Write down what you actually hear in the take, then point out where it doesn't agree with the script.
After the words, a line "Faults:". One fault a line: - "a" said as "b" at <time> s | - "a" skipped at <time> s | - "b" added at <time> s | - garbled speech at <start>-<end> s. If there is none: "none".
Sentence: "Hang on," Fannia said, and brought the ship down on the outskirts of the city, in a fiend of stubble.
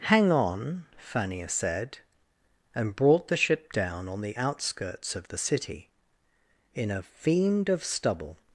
"Hang on," Fannia said, and brought the ship down on the outskirts of the city, in a fiend of stubble.
Faults:
none